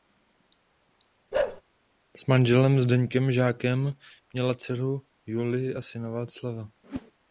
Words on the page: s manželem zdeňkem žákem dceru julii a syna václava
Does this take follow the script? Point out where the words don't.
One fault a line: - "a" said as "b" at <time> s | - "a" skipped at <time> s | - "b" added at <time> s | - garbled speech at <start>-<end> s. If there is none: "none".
- "měla" added at 4.3 s